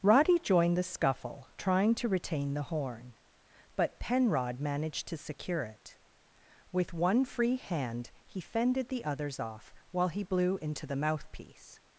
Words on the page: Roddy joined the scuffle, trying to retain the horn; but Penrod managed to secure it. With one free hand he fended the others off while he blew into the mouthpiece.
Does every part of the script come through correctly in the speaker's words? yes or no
yes